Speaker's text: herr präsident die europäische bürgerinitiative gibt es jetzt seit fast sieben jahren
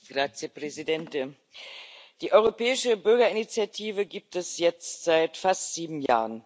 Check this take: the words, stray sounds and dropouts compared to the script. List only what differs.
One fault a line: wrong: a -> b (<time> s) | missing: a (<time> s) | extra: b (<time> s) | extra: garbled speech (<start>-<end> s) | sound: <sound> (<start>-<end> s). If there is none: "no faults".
sound: dropout (6.1-6.1 s)